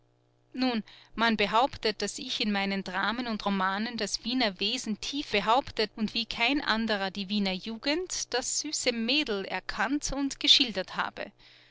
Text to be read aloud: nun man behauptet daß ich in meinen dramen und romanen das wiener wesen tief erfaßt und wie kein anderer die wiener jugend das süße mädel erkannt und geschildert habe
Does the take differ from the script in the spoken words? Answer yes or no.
yes